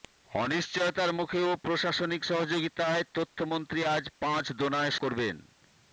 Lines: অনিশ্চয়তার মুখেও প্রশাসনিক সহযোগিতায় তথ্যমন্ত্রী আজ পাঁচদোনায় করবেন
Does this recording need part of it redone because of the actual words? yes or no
no